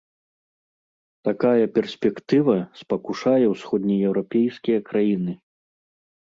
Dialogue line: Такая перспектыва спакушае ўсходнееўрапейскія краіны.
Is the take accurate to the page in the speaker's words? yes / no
yes